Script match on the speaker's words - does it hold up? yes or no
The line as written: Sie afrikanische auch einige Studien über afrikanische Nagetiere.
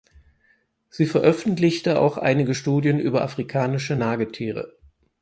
no